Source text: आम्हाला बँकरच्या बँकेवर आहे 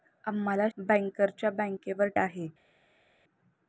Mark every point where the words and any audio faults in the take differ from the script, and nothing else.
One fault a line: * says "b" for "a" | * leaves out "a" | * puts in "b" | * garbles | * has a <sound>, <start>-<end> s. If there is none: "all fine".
all fine